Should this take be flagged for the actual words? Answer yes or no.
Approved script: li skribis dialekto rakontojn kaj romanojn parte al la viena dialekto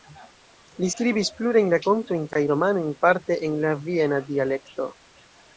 yes